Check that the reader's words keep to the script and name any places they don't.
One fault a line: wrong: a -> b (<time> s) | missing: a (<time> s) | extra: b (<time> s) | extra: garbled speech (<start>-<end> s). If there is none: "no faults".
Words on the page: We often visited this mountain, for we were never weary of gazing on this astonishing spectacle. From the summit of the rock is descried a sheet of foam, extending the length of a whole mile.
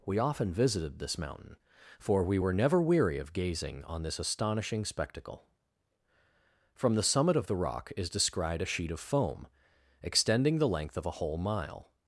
no faults